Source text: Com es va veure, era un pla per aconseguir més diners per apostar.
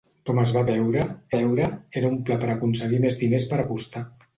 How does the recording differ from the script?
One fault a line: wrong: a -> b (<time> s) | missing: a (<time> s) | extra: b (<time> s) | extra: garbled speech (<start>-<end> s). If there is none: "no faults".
extra: veure (1.3 s)